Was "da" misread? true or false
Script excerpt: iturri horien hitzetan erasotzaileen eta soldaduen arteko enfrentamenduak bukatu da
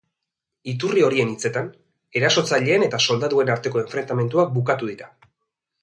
true